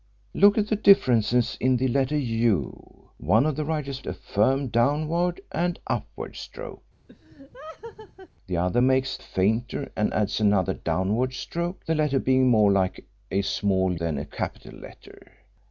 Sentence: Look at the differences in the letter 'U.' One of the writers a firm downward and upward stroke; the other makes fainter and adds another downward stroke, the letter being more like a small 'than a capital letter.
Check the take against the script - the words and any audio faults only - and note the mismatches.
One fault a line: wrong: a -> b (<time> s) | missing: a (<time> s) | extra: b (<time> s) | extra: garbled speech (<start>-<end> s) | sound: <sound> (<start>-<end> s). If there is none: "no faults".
sound: laugh (7.1-8.3 s)